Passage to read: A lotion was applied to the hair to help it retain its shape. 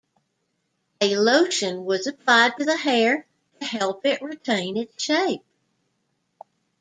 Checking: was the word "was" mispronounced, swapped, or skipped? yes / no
no